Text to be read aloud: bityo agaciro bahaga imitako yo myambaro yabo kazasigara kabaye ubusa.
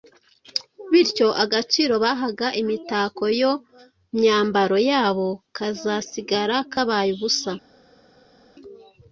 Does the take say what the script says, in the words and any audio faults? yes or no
yes